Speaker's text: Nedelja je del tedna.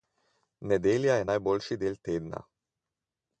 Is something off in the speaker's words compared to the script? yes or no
yes